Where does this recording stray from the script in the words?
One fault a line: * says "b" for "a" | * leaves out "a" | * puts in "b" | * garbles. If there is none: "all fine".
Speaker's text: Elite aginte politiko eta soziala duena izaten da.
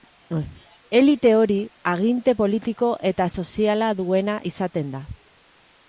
* puts in "hori"